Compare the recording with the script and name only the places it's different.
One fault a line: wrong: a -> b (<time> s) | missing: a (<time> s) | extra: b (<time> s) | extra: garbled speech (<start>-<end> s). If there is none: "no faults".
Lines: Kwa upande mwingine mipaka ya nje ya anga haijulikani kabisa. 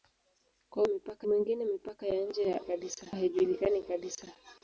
wrong: upande -> mipaka (0.9 s)
wrong: anga -> kabisa (2.6 s)